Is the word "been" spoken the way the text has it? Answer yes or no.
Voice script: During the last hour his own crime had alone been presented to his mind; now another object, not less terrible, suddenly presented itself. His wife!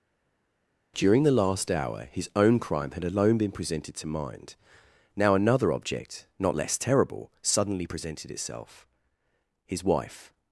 yes